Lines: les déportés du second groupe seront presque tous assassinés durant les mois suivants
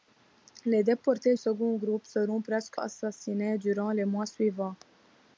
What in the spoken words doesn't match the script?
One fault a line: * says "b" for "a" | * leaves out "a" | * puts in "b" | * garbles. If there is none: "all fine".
* leaves out "du"
* leaves out "tous"